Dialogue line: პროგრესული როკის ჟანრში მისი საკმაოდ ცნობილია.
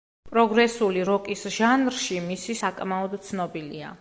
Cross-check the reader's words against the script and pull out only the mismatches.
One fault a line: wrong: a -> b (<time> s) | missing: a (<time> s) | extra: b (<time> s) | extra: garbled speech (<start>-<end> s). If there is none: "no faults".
no faults